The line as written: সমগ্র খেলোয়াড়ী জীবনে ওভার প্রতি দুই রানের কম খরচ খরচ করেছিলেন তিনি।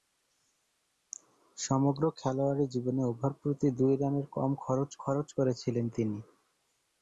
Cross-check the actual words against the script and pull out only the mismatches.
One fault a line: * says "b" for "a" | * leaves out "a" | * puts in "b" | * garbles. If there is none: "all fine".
all fine